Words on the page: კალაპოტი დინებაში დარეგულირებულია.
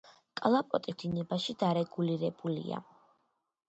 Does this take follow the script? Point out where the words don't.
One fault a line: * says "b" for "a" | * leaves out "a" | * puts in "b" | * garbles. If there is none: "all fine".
all fine